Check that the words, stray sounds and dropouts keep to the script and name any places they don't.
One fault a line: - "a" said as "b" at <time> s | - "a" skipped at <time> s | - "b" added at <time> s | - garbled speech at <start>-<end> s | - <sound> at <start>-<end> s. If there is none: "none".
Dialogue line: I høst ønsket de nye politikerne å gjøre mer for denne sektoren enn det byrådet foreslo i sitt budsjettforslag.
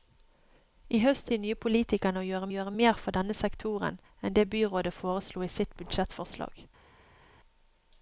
- "ønsket" skipped at 1.3 s
- "gjøre" added at 2.5 s